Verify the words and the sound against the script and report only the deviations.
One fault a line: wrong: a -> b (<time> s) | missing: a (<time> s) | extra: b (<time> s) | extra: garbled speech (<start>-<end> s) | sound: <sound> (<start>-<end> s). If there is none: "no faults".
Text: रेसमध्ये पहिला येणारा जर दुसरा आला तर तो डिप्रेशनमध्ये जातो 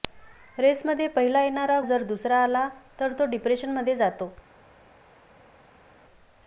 no faults